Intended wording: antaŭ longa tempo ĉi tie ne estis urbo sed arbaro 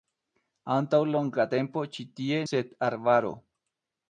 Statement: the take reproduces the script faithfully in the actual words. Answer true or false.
false